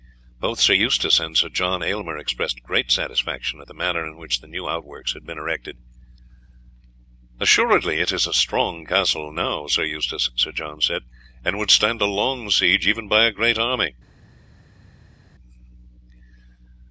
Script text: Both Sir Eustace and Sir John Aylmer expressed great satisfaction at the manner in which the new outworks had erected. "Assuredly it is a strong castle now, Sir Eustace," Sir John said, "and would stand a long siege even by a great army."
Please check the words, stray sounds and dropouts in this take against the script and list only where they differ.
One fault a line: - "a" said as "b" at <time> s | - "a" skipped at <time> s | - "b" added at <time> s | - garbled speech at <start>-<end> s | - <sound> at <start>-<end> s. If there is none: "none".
- "been" added at 5.3 s